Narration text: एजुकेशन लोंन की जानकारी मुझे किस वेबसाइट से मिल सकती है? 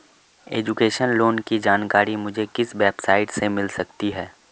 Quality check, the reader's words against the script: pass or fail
pass